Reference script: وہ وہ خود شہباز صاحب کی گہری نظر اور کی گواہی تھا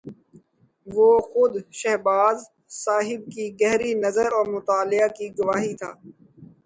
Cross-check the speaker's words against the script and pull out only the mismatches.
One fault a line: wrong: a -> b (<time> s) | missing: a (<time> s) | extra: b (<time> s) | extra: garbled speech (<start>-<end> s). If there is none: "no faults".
missing: وہ (1.1 s)
extra: مطالعہ (4.5 s)